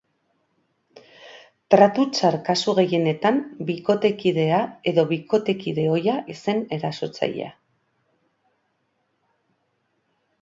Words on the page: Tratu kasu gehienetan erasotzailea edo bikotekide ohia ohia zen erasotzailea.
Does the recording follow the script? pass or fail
fail